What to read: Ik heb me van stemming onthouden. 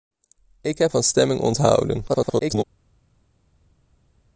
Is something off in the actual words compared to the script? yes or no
yes